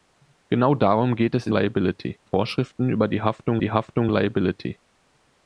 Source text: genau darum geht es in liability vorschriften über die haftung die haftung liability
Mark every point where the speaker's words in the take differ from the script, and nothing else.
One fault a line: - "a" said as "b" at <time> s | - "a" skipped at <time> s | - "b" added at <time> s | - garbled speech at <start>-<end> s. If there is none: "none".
none